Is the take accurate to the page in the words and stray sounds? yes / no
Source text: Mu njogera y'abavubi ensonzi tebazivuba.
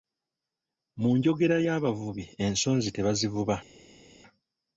yes